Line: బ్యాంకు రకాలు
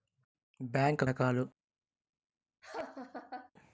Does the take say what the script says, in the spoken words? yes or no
yes